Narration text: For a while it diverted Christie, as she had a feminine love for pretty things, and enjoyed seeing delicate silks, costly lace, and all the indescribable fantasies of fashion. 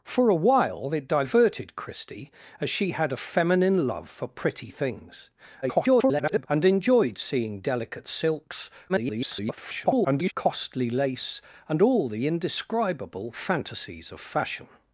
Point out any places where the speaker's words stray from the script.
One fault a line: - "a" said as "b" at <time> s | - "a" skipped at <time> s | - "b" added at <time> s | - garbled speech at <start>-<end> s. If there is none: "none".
- garbled speech at 5.6-6.5 s
- garbled speech at 8.9-10.3 s